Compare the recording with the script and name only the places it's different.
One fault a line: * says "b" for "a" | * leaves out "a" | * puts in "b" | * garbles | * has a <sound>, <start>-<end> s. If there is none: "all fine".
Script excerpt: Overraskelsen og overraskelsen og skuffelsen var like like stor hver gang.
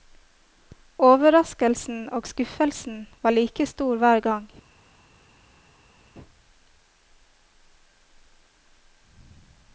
* leaves out "overraskelsen og"
* leaves out "like"